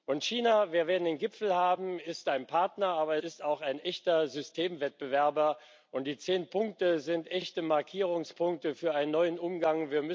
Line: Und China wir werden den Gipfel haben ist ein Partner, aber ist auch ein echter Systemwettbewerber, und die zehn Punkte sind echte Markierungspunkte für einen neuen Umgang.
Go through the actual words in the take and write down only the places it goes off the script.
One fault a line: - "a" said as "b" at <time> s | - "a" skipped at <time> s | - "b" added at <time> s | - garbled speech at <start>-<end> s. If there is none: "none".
none